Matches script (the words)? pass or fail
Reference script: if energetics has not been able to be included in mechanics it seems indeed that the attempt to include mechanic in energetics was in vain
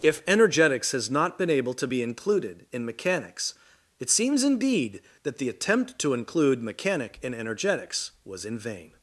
pass